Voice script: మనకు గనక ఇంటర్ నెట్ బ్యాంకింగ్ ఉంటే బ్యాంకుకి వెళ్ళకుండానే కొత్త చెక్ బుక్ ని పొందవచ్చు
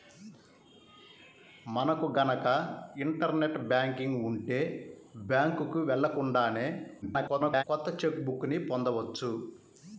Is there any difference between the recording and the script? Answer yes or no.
yes